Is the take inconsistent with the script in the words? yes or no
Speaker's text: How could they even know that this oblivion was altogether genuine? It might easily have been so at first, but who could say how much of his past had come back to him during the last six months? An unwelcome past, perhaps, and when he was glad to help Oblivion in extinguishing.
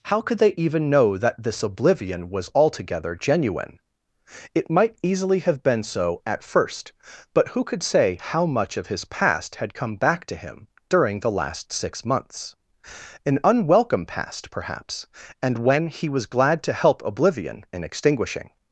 no